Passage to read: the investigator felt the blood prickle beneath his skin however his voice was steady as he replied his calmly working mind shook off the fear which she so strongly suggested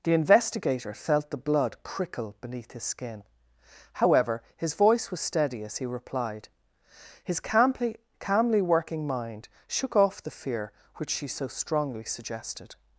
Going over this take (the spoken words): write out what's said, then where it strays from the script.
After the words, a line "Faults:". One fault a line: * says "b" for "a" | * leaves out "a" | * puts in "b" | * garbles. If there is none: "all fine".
the investigator felt the blood prickle beneath his skin however his voice was steady as he replied his calmly calmly working mind shook off the fear which she so strongly suggested
Faults:
* puts in "calmly"